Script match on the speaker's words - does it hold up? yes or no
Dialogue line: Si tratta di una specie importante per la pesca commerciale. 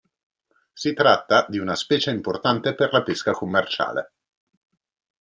yes